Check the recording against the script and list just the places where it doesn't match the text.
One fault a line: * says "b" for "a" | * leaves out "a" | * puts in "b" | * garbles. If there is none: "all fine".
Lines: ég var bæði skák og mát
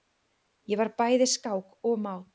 all fine